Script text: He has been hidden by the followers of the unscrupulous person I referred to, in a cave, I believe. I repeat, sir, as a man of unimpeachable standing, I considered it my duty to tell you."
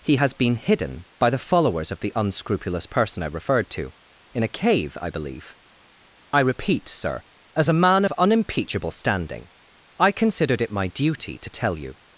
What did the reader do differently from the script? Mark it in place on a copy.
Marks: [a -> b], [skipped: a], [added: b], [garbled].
He has been hidden by the followers of the unscrupulous person I referred to, in a cave, I believe. I repeat, sir, as a man of unimpeachable standing, I considered it my duty to tell you."